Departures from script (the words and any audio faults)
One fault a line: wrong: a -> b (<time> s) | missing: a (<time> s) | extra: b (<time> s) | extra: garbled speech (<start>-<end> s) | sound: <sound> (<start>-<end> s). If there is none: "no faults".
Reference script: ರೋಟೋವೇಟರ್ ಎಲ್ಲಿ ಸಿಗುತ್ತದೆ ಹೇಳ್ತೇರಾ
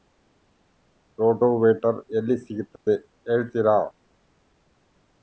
sound: dropout (2.8-2.9 s)